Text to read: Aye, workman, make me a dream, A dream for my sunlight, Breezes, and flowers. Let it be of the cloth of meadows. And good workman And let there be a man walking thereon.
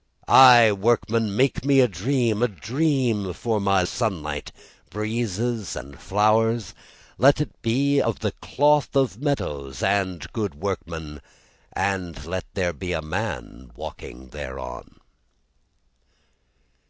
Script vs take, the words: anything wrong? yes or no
no